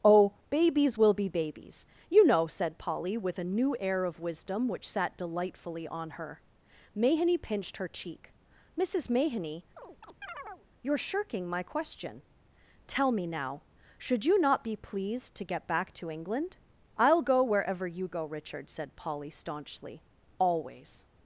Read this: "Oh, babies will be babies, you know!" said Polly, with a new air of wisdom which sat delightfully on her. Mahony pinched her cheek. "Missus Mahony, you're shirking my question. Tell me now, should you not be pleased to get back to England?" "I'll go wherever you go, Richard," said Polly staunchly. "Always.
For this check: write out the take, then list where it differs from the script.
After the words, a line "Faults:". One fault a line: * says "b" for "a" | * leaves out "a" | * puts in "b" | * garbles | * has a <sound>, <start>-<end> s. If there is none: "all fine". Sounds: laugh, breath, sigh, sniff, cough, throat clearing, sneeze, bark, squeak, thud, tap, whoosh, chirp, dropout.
"Oh, babies will be babies, you know!" said Polly, with a new air of wisdom which sat delightfully on her. Mahony pinched her cheek. "Missus Mahony, you're shirking my question. Tell me now, should you not be pleased to get back to England?" "I'll go wherever you go, Richard," said Polly staunchly. "Always.
Faults:
* has a chirp, 9.8-10.7 s